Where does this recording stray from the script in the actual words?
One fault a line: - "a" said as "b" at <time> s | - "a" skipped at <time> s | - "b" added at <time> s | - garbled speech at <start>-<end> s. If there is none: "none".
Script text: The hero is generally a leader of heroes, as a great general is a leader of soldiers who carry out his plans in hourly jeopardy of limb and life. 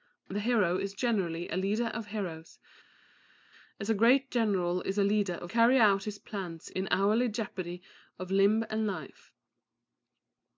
- "soldiers who" skipped at 5.5 s